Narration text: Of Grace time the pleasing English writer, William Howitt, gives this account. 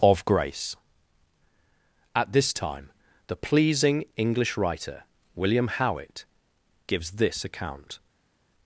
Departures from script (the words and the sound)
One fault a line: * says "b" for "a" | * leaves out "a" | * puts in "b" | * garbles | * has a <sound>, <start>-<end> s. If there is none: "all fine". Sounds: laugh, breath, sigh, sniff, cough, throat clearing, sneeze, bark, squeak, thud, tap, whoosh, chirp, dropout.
* puts in "at this"